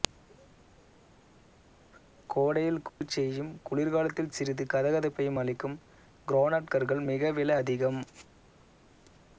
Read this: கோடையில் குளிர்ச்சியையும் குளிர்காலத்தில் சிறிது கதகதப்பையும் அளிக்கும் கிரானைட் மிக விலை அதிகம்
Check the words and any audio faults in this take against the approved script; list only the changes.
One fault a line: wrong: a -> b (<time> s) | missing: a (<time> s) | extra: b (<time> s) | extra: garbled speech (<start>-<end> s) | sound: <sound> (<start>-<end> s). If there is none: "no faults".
sound: dropout (2.9-3.0 s)
extra: கற்கள் (6.7 s)